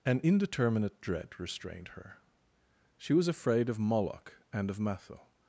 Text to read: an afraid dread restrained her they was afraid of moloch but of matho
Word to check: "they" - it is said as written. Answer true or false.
false